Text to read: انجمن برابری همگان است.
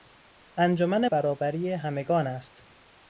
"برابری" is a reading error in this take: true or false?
false